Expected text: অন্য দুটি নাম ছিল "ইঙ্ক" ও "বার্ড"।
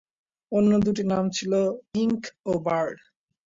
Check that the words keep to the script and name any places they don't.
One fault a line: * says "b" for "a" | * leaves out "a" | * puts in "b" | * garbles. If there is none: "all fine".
all fine